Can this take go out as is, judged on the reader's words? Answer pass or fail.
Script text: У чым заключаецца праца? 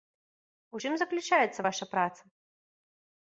fail